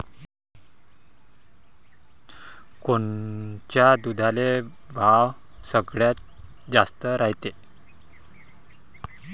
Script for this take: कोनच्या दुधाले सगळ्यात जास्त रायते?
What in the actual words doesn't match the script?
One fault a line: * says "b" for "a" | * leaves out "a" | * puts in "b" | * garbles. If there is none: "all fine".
* puts in "भाव"